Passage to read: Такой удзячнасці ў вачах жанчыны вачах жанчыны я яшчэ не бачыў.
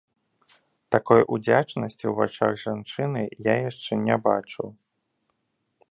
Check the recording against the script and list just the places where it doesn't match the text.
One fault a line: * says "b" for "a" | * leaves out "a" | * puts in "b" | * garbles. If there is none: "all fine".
* leaves out "вачах жанчыны"